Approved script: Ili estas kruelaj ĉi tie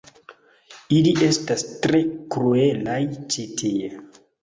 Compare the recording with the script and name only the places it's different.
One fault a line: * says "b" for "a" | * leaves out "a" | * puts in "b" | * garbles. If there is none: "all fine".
* puts in "tre"